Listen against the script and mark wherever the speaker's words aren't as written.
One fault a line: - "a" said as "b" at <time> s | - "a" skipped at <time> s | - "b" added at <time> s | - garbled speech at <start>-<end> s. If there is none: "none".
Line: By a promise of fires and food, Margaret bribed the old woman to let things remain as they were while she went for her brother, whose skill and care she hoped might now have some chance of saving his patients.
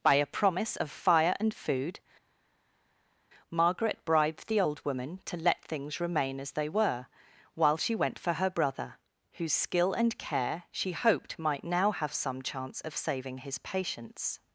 - "fires" said as "fire" at 0.9 s